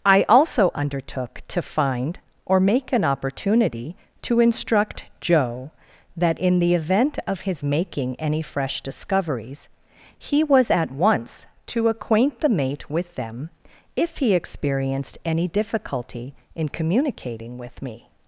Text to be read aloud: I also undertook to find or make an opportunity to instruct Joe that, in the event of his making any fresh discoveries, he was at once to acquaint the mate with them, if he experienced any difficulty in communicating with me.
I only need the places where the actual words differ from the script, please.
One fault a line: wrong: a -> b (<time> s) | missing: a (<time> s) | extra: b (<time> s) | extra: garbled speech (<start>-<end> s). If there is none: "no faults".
no faults